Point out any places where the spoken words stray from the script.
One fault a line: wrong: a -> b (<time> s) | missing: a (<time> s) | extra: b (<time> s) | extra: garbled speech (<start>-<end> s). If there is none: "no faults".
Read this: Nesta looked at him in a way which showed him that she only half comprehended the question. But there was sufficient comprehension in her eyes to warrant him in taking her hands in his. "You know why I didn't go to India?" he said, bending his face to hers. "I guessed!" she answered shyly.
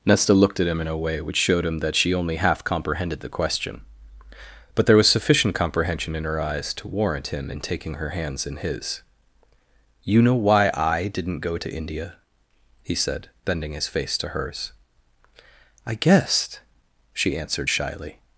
no faults